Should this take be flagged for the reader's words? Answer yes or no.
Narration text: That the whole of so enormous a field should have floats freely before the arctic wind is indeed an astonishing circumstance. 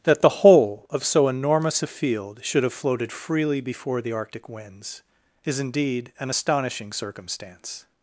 yes